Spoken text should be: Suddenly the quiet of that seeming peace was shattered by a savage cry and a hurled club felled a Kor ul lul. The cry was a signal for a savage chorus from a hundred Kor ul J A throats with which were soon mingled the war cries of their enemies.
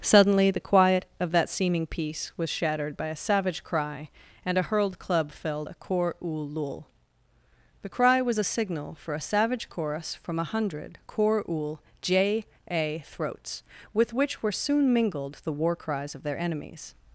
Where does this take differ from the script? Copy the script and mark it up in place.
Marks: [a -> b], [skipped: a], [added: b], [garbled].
Suddenly the quiet of that seeming peace was shattered by a savage cry and a hurled club felled a Kor ul lul. The cry was a signal for a savage chorus from a hundred Kor ul J A throats with which were soon mingled the war cries of their enemies.